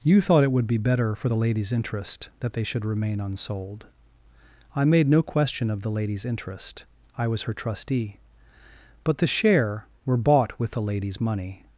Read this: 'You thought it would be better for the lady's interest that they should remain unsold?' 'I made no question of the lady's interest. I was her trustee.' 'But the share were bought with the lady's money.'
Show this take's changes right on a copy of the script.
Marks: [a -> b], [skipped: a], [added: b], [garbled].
'You thought it would be better for the lady's interest that they should remain unsold?' 'I made no question of the lady's interest. I was her trustee.' 'But the share were bought with the lady's money.'